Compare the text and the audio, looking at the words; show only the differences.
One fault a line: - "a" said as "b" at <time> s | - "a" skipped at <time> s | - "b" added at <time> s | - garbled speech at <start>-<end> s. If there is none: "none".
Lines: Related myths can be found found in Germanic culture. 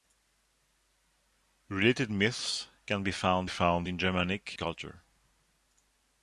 none